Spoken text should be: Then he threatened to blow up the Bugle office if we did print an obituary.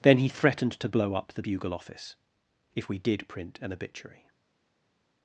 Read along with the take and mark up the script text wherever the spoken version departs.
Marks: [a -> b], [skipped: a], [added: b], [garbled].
Then he threatened to blow up the Bugle office if we did print an obituary.